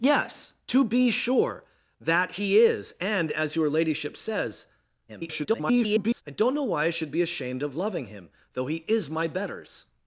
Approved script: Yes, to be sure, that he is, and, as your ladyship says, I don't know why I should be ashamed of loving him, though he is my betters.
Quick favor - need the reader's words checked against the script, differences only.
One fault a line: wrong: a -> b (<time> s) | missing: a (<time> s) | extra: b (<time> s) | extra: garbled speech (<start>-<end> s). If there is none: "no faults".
extra: garbled speech (5.1-6.2 s)